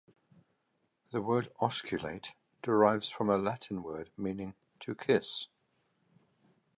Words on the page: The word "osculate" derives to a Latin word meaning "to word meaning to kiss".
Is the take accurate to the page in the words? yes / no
no